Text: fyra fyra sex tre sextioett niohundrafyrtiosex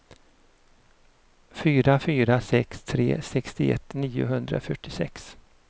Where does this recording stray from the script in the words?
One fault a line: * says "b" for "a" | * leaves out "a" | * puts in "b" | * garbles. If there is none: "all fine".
all fine